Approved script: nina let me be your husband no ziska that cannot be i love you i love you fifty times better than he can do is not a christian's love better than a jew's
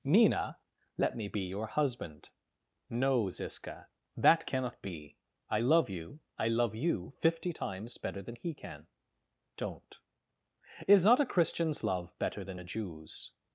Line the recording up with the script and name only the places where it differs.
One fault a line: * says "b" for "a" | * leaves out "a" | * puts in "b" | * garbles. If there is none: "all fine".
* says "don't" for "do"